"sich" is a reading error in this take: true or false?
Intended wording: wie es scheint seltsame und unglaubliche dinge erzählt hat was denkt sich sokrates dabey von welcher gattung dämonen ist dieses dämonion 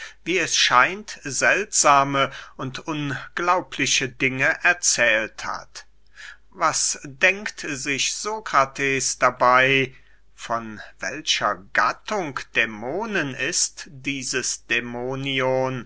false